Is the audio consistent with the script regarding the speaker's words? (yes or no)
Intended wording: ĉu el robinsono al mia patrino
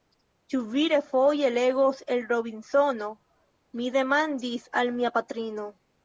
no